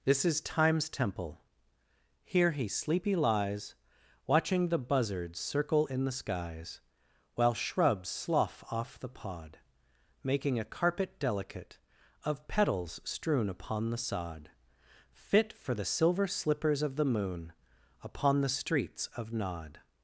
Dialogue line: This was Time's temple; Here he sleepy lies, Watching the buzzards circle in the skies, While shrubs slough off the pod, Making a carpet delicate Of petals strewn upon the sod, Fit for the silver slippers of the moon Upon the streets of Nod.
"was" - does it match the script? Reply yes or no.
no